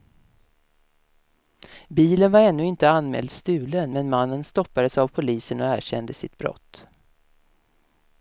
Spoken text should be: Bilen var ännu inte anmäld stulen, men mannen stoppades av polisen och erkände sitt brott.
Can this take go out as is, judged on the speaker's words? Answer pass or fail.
pass